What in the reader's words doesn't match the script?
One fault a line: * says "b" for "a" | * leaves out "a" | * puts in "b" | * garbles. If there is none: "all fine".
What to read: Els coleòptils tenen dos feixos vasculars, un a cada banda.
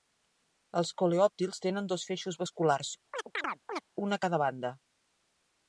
all fine